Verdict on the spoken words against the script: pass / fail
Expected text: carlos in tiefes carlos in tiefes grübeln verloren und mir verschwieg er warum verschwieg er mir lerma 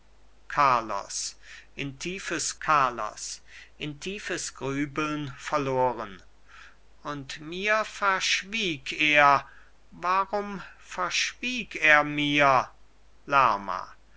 pass